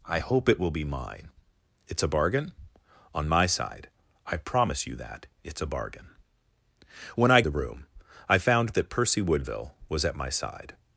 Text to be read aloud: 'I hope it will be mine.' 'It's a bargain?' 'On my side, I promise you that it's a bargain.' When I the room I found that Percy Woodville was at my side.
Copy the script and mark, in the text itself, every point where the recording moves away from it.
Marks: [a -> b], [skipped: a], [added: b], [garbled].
'I hope it will be mine.' 'It's a bargain?' 'On my side, I promise you that it's a bargain.' When I the room I found that Percy Woodville was at my side.